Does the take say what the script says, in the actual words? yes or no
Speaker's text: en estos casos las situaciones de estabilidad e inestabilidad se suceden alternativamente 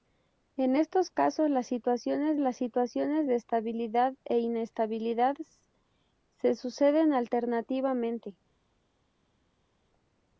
no